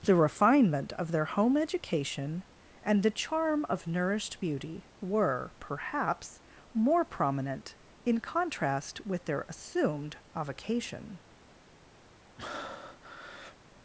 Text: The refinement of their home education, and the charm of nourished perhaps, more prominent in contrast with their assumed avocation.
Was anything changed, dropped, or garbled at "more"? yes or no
no